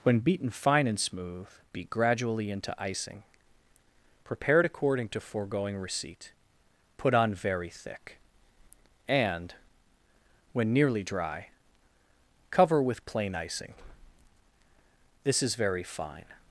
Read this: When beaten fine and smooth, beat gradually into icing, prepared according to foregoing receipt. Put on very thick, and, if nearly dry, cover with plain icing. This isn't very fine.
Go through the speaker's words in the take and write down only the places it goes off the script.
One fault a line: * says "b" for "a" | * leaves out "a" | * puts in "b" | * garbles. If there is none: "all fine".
* says "when" for "if"
* says "is" for "isn't"